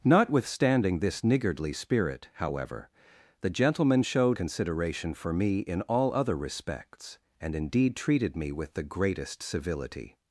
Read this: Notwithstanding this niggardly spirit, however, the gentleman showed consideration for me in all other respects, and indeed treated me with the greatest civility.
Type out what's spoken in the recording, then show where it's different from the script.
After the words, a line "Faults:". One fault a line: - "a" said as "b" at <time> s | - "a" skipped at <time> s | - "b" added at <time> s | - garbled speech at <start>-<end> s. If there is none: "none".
Notwithstanding this niggardly spirit, however, the gentleman showed consideration for me in all other respects, and indeed treated me with the greatest civility.
Faults:
none